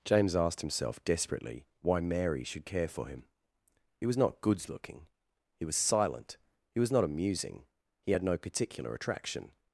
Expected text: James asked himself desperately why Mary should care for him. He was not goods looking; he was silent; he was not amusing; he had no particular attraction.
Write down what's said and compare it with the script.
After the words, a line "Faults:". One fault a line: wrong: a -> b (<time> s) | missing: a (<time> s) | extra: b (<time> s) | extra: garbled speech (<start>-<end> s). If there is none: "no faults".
James asked himself desperately why Mary should care for him. He was not goods looking; he was silent; he was not amusing; he had no particular attraction.
Faults:
no faults